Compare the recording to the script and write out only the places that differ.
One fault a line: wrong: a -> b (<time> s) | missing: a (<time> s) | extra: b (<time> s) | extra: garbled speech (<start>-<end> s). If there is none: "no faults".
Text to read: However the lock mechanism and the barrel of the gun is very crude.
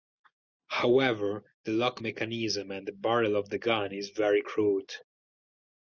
no faults